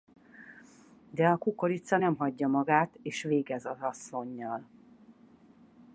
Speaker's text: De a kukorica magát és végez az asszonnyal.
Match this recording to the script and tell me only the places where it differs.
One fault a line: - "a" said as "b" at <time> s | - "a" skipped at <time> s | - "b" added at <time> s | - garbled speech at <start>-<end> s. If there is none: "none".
- "nem hagyja" added at 1.9 s